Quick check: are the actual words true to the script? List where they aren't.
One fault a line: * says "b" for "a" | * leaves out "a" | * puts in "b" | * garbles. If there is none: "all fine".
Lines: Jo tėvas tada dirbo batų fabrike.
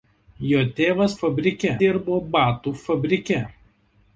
* says "fabrike" for "tada"